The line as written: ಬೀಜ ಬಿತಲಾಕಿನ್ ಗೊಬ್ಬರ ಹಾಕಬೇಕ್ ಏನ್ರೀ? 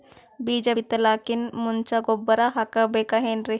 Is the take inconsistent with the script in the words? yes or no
yes